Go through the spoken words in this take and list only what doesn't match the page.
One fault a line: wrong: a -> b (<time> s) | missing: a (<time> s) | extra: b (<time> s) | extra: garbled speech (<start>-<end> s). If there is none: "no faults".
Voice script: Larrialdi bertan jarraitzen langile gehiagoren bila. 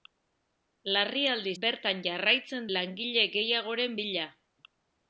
no faults